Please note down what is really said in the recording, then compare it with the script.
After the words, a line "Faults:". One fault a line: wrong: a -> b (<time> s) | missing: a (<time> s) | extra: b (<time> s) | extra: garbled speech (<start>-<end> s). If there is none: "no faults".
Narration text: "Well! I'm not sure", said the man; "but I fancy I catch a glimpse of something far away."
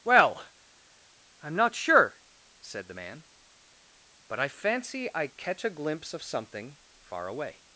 "Well! I'm not sure", said the man; "but I fancy I catch a glimpse of something far away."
Faults:
no faults